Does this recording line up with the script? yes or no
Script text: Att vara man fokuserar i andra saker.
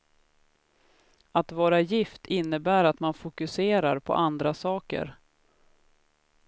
no